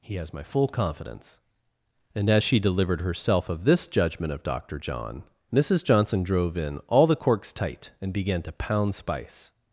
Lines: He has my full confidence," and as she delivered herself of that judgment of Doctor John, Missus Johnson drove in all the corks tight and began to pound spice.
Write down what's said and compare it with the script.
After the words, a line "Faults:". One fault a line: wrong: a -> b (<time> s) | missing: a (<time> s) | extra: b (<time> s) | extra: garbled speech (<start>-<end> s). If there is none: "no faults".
He has my full confidence," and as she delivered herself of this judgment of Doctor John, Missus Johnson drove in all the corks tight and began to pound spice.
Faults:
wrong: that -> this (3.6 s)